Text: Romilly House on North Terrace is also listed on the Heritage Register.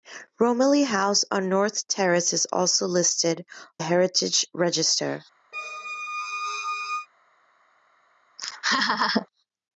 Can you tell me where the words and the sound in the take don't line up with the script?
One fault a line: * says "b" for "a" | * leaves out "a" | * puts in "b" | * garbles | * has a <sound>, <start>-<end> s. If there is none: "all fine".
* leaves out "on the"
* has a squeak, 5.5-7.1 s
* has a laugh, 8.4-9.3 s